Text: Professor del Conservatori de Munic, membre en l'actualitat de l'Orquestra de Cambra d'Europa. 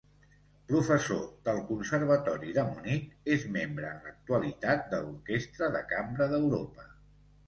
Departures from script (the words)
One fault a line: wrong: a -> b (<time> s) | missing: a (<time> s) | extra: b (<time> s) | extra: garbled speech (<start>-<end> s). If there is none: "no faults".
extra: és (3.3 s)